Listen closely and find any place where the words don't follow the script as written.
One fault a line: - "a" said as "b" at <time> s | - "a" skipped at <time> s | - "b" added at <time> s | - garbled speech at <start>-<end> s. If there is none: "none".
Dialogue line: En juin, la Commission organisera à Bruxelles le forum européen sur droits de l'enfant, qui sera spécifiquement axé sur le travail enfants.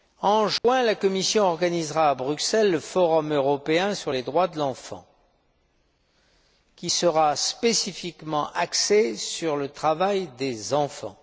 - "les" added at 4.1 s
- "des" added at 10.4 s